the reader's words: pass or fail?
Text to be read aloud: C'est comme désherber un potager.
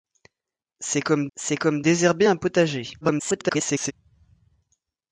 fail